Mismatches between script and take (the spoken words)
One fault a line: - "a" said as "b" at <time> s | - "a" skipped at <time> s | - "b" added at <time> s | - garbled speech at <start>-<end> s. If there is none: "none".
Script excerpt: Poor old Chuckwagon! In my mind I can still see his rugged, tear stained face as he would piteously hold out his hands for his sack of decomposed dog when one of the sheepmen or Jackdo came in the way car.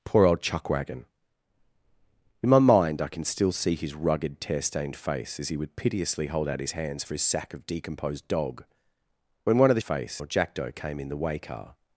- "sheepmen" said as "face" at 9.8 s